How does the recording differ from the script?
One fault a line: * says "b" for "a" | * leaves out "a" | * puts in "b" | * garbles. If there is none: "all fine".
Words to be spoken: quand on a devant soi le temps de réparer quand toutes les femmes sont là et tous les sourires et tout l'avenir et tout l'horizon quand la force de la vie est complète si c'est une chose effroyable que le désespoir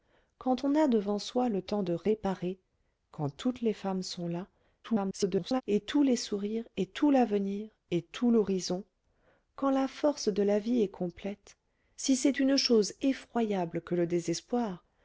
* garbles